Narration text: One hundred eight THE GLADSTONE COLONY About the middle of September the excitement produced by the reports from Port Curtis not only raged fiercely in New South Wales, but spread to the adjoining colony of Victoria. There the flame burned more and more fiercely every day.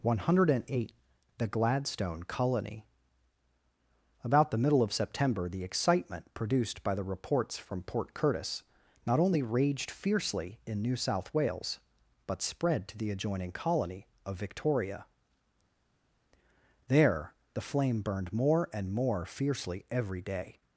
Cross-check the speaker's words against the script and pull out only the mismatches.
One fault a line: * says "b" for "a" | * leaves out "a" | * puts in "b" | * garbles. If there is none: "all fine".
all fine